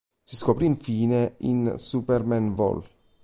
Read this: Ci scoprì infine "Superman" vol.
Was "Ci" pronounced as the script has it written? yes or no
no